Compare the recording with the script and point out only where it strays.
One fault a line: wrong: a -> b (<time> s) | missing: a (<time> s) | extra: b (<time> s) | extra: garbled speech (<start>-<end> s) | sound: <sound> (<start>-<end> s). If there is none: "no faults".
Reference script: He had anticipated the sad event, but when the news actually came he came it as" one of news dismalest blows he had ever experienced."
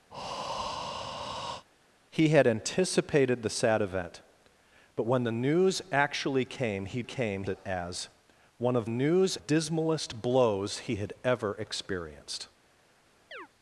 sound: breath (0.1-1.6 s)
sound: chirp (13.3-13.5 s)